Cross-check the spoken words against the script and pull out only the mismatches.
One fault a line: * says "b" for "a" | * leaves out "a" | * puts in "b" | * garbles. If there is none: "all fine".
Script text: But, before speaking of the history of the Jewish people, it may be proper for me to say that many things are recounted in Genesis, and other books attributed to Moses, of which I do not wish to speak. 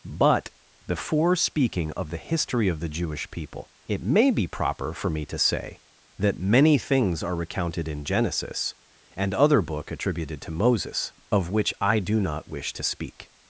* says "book" for "books"